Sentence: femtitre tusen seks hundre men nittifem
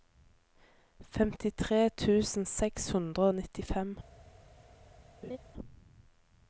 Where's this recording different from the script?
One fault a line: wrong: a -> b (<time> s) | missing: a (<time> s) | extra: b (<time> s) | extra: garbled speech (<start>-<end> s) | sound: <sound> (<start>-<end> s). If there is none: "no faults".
wrong: men -> og (3.3 s)
sound: laugh (5.2-5.4 s)